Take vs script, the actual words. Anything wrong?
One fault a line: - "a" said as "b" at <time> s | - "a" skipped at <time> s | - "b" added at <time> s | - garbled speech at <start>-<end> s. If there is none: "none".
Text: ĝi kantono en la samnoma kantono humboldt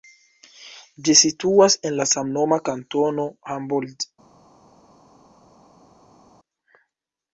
- "kantono" said as "situas" at 1.2 s